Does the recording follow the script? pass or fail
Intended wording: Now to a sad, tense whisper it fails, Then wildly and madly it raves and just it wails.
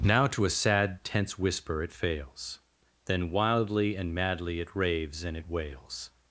fail